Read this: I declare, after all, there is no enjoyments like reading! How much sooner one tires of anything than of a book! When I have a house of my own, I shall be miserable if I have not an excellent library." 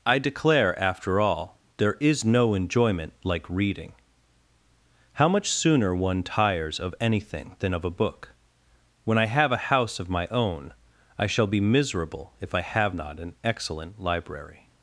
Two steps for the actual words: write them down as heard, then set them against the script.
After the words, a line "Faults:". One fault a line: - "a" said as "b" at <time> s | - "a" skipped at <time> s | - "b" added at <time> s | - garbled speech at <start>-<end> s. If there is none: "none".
I declare, after all, there is no enjoyment like reading! How much sooner one tires of anything than of a book! When I have a house of my own, I shall be miserable if I have not an excellent library."
Faults:
- "enjoyments" said as "enjoyment" at 2.5 s